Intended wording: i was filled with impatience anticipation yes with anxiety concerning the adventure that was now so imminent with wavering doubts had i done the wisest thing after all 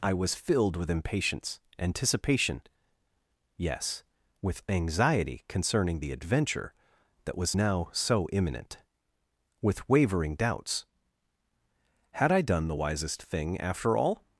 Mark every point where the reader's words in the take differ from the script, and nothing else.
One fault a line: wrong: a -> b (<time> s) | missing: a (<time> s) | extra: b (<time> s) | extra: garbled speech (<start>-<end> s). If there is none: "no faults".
no faults